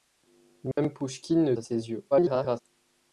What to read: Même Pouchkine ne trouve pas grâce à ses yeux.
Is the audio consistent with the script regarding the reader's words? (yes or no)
no